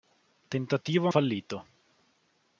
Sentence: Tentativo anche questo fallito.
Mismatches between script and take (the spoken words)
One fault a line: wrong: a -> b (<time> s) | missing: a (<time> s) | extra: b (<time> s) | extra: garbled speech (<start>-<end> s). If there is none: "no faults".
missing: anche questo (1.1 s)